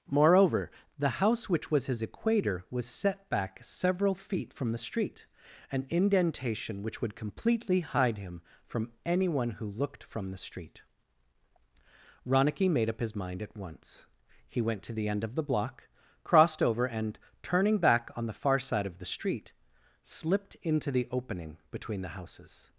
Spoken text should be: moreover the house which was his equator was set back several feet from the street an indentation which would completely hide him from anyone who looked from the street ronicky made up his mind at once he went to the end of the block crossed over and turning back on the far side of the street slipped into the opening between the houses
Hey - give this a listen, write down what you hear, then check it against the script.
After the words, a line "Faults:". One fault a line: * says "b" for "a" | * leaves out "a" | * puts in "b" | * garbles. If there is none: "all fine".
moreover the house which was his equator was set back several feet from the street an indentation which would completely hide him from anyone who looked from the street ronicky made up his mind at once he went to the end of the block crossed over and turning back on the far side of the street slipped into the opening between the houses
Faults:
all fine